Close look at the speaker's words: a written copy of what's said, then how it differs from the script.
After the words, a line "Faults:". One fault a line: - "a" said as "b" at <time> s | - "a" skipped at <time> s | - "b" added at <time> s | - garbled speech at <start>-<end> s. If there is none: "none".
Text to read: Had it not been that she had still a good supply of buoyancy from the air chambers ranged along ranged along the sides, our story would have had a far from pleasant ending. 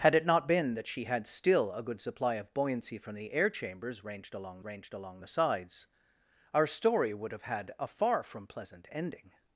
Had it not been that she had still a good supply of buoyancy from the air chambers ranged along ranged along the sides, our story would have had a far from pleasant ending.
Faults:
none